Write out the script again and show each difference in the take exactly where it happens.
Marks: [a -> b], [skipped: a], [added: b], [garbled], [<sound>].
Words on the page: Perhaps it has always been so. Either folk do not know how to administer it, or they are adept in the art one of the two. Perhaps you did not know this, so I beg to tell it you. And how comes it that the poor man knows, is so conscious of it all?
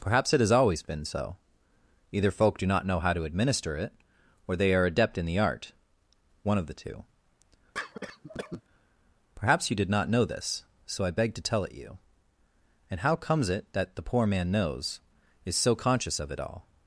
Perhaps it has always been so. Either folk do not know how to administer it, or they are adept in the art one of the two. [cough] Perhaps you did not know this, so I beg to tell it you. And how comes it that the poor man knows, is so conscious of it all?